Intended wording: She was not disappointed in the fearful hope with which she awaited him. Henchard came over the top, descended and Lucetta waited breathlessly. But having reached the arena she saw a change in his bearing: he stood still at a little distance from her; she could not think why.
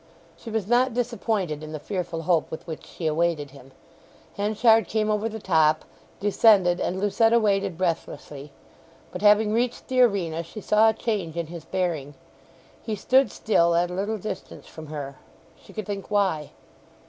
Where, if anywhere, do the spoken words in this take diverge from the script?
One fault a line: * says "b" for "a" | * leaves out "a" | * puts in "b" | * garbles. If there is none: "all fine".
* leaves out "not"